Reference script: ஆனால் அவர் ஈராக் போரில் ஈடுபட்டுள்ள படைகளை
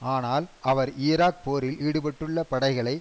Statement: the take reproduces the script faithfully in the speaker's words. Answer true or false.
true